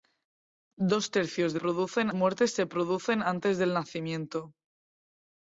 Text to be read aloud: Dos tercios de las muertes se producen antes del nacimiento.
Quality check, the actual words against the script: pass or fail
fail